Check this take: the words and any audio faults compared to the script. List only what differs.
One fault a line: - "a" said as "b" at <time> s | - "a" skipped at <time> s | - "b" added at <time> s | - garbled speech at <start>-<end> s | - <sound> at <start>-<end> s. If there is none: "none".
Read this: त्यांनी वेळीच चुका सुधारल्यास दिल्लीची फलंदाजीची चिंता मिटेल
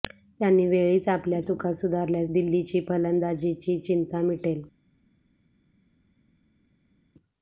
- "आपल्या" added at 1.1 s